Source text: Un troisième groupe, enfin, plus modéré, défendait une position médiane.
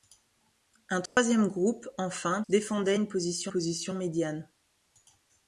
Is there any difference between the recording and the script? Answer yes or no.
yes